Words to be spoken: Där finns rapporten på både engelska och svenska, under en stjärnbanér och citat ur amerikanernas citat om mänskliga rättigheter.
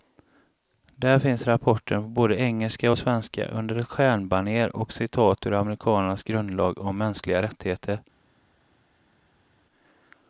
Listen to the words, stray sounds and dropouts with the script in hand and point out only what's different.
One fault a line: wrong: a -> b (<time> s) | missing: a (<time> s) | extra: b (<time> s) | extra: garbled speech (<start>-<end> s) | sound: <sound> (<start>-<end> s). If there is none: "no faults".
wrong: en -> ett (3.8 s)
wrong: citat -> grundlag (6.2 s)